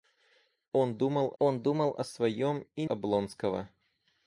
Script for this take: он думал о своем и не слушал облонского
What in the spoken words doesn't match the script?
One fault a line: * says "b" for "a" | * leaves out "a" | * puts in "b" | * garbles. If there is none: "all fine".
* puts in "он думал"
* leaves out "не слушал"